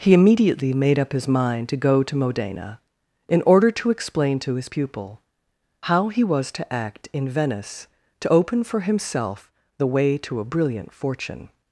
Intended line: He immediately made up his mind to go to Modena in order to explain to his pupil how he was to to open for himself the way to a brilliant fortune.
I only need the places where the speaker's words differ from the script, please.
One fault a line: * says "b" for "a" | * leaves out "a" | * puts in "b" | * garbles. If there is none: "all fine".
* puts in "act in Venice"